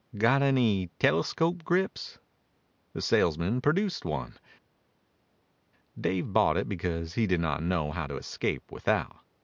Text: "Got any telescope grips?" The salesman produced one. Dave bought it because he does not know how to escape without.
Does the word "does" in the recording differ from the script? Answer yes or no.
yes